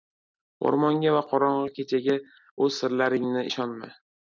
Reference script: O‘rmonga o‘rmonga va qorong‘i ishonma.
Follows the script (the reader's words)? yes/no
no